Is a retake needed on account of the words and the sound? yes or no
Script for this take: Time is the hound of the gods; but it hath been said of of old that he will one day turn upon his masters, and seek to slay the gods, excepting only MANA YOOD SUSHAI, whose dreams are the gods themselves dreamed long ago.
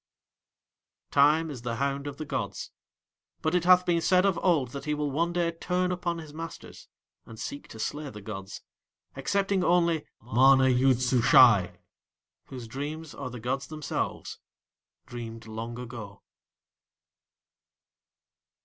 yes